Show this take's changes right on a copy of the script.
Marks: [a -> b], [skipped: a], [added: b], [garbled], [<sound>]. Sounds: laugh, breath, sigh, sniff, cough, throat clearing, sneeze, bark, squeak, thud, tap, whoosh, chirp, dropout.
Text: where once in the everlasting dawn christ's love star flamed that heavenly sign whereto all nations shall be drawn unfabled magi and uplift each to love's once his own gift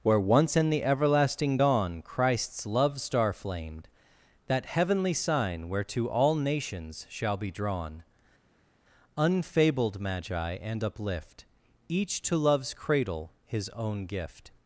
where once in the everlasting dawn christ's love star flamed that heavenly sign whereto all nations shall be drawn unfabled magi and uplift each to love's [once -> cradle] his own gift